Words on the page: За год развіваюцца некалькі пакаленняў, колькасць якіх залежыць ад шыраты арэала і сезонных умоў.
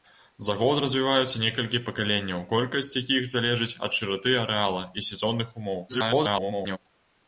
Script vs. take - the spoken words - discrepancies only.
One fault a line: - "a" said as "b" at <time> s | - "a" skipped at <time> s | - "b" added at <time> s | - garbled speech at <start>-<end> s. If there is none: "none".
- garbled speech at 5.9-6.8 s